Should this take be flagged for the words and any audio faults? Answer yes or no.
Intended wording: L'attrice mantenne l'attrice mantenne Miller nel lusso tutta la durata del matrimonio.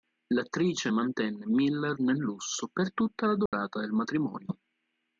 yes